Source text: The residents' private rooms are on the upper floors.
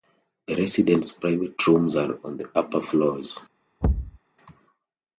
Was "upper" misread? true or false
false